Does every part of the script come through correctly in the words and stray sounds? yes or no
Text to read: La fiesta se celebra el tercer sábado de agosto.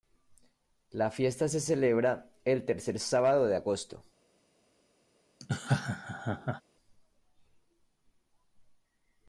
no